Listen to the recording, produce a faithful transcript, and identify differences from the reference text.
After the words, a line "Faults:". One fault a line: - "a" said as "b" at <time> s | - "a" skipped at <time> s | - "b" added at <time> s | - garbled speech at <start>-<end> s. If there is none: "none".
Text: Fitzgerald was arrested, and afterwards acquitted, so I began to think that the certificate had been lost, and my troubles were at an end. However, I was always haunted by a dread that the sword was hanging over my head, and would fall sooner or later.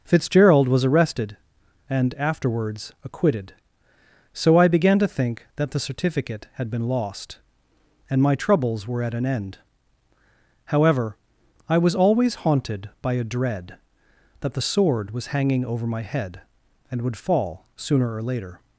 Fitzgerald was arrested, and afterwards acquitted, so I began to think that the certificate had been lost, and my troubles were at an end. However, I was always haunted by a dread that the sword was hanging over my head, and would fall sooner or later.
Faults:
none